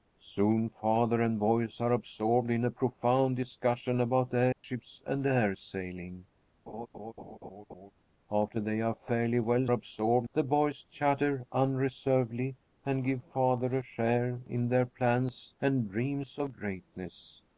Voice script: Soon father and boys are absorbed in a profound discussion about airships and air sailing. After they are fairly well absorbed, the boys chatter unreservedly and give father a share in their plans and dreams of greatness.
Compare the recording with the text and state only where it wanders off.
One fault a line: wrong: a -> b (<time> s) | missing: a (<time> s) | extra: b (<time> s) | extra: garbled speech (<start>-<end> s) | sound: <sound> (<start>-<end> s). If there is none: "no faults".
sound: dropout (4.5-4.6 s)
sound: laugh (6.7-7.9 s)